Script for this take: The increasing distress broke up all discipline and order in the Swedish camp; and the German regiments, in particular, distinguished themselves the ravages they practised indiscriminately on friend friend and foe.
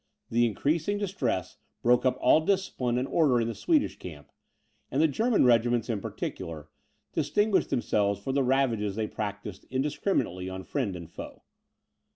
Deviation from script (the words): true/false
true